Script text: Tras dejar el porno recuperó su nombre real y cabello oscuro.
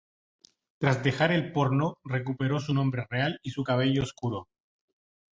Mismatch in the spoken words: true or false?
true